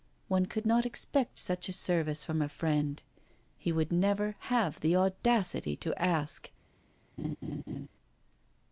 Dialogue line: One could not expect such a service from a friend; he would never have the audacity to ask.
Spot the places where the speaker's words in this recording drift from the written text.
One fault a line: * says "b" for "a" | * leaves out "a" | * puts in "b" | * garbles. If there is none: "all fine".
all fine